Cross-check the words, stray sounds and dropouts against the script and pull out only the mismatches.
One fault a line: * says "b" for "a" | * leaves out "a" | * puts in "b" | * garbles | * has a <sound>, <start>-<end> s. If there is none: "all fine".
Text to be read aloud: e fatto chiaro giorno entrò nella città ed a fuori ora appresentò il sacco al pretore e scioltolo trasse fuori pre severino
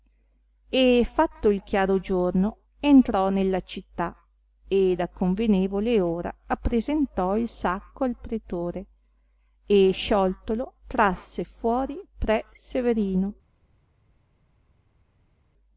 * puts in "il"
* says "convenevole" for "fuori"